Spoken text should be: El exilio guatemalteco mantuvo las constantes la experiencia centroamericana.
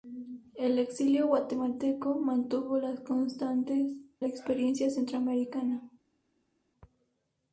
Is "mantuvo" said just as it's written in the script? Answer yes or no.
yes